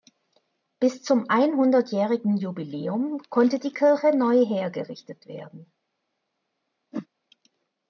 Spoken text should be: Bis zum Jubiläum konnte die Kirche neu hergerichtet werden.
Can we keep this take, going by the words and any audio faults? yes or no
no